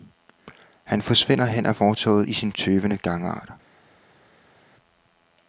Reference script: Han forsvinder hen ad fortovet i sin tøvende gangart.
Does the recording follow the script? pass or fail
pass